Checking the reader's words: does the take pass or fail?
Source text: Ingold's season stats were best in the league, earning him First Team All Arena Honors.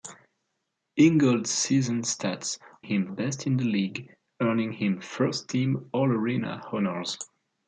fail